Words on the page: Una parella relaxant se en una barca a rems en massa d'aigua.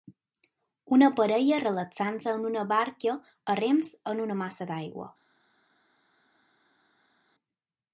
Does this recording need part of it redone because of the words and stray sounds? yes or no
yes